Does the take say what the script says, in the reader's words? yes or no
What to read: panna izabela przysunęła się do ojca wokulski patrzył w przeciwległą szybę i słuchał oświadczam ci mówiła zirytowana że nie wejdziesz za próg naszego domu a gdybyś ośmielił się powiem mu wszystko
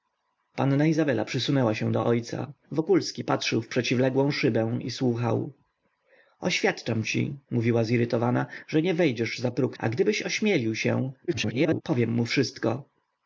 no